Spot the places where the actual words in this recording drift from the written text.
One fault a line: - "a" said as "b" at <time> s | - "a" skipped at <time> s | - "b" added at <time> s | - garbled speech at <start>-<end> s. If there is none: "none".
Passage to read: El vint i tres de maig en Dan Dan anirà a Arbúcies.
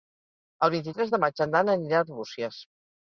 - "Dan" skipped at 1.7 s